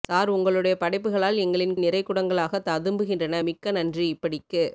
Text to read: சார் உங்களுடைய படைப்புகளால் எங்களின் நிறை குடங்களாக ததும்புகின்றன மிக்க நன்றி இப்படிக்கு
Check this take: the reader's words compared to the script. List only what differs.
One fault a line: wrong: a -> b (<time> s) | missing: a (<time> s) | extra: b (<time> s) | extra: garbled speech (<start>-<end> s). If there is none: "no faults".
no faults